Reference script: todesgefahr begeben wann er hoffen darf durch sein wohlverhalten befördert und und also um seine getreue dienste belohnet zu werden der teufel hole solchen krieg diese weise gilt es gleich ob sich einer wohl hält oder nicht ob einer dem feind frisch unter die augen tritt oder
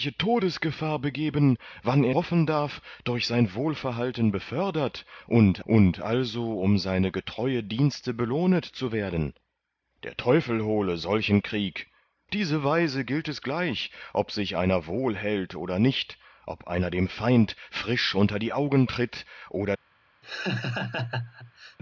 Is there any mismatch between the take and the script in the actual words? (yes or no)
no